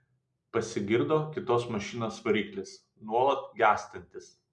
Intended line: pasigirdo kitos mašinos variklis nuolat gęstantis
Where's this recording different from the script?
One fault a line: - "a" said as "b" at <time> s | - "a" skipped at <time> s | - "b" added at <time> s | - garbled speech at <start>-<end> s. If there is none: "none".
none